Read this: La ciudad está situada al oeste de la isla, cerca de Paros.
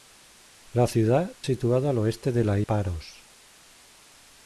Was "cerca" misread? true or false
true